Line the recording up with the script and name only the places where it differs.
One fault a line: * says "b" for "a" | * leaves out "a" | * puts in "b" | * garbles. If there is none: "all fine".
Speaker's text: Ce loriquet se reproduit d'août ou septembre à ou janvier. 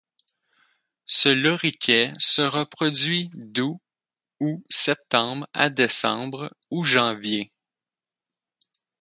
* puts in "décembre"